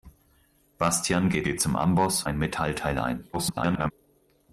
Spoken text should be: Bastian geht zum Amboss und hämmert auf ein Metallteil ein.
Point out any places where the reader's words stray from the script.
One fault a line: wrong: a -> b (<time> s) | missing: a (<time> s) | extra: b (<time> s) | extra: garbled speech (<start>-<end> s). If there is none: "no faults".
extra: geht (1.4 s)
missing: und hämmert auf (2.2 s)
extra: garbled speech (3.3-3.9 s)